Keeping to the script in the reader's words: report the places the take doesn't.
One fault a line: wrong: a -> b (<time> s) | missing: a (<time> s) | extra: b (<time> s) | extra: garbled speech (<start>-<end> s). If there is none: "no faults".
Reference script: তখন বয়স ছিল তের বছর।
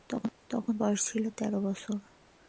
no faults